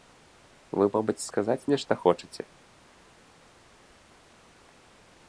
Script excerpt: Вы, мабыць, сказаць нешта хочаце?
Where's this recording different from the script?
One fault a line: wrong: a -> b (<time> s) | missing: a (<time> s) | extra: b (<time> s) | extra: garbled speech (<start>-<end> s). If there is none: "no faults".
no faults